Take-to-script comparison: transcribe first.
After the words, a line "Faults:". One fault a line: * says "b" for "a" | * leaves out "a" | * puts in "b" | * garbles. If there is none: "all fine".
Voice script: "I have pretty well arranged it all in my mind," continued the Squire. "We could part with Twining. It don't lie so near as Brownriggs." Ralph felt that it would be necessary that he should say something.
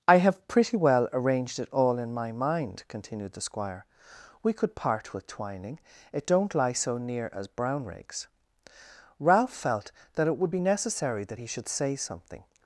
"I have pretty well arranged it all in my mind," continued the Squire. "We could part with Twining. It don't lie so near as Brownriggs." Ralph felt that it would be necessary that he should say something.
Faults:
all fine